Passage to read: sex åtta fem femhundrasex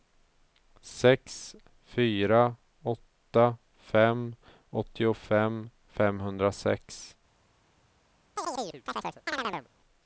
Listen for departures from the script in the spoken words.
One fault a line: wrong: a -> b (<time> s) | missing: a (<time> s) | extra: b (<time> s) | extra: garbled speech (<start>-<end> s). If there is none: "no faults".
extra: fyra (1.8 s)
extra: åttiofem (4.7 s)